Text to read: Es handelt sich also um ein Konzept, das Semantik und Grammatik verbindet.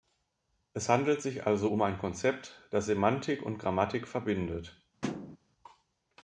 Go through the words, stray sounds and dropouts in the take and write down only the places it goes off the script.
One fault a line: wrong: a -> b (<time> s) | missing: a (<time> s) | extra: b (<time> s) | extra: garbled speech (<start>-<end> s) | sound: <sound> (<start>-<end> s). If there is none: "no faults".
sound: thud (5.0-5.4 s)